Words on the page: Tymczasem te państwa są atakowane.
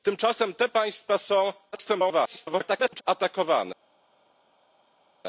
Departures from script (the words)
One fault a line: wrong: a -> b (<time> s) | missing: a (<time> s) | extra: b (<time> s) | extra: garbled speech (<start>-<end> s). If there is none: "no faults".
extra: garbled speech (1.7-3.0 s)